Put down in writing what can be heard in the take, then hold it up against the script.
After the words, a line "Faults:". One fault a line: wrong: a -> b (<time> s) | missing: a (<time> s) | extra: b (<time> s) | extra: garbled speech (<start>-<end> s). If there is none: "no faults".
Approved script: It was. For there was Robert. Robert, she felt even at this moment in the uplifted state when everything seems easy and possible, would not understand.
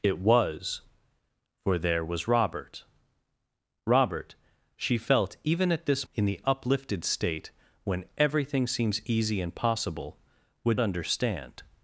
It was. For there was Robert. Robert, she felt even at this in the uplifted state when everything seems easy and possible, would understand.
Faults:
missing: moment (6.1 s)
missing: not (10.8 s)